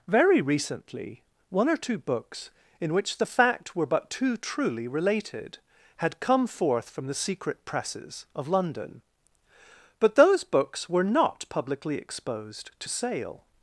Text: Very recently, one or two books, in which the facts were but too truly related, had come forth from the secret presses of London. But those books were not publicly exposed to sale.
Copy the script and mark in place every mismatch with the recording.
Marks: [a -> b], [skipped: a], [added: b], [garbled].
Very recently, one or two books, in which the [facts -> fact] were but too truly related, had come forth from the secret presses of London. But those books were not publicly exposed to sale.